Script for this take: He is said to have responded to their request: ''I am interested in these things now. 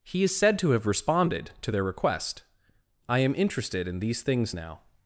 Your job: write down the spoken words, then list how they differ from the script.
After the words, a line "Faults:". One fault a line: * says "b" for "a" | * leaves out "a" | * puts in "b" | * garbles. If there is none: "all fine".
He is said to have responded to their request: ''I am interested in these things now.
Faults:
all fine